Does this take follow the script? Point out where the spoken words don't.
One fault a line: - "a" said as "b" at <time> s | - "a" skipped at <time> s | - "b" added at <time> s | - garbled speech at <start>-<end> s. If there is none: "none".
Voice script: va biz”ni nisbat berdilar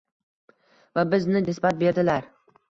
none